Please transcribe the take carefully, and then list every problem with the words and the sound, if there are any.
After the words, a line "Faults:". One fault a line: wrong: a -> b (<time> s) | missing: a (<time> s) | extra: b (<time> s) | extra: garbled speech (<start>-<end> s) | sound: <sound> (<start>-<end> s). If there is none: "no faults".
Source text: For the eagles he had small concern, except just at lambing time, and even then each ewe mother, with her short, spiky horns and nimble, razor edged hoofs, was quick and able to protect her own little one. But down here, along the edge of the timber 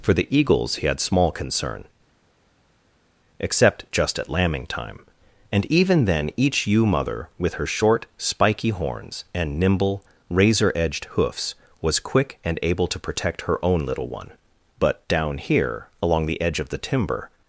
For the eagles he had small concern, except just at lambing time, and even then each ewe mother, with her short, spiky horns and nimble, razor edged hoofs, was quick and able to protect her own little one. But down here, along the edge of the timber
Faults:
no faults